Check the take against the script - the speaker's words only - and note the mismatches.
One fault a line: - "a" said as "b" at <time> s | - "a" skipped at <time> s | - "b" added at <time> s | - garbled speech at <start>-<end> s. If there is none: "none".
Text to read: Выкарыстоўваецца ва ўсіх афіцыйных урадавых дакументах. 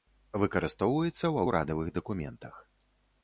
- "ўсіх афіцыйных" skipped at 1.4 s